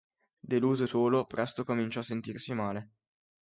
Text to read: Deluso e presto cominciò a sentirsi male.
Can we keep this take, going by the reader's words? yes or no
no